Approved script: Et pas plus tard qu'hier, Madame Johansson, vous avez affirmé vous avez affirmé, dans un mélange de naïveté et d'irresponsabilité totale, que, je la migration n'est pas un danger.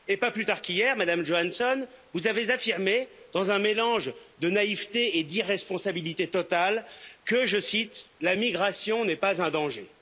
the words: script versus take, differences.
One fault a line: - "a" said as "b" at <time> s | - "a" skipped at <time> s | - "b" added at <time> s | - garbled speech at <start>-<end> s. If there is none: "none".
- "vous avez affirmé" skipped at 3.1 s
- "cite" added at 7.6 s